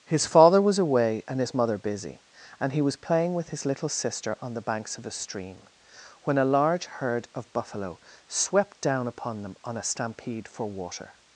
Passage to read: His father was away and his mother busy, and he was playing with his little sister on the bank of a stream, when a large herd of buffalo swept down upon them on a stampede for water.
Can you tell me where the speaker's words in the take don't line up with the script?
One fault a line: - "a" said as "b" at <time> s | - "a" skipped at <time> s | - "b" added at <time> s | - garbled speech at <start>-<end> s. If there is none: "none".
- "bank" said as "banks" at 4.6 s